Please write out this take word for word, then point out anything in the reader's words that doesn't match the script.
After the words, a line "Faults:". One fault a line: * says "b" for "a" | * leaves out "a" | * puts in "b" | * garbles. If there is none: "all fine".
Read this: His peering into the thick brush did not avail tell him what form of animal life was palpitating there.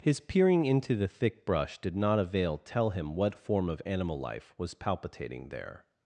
His peering into the thick brush did not avail tell him what form of animal life was palpitating there.
Faults:
all fine